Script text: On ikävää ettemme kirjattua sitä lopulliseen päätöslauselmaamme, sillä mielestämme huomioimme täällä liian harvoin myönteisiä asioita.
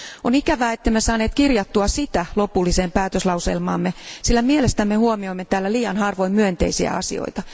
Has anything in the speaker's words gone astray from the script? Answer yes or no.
yes